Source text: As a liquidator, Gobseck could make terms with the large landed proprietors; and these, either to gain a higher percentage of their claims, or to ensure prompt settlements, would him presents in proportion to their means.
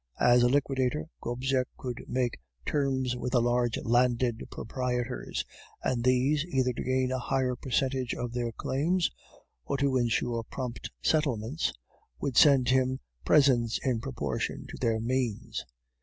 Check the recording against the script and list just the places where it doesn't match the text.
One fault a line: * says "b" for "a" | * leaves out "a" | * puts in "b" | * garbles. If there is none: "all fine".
* puts in "send"